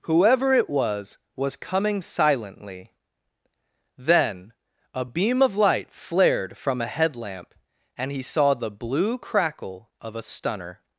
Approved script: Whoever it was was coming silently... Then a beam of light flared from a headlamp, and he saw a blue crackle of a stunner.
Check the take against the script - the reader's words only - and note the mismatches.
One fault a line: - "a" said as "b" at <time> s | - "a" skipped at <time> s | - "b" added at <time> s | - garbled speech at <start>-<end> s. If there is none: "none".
- "a" said as "the" at 8.5 s